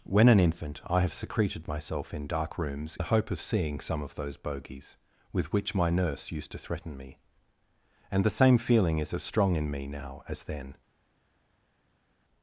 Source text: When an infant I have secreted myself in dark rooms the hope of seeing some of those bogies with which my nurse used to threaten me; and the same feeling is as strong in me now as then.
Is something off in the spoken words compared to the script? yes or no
no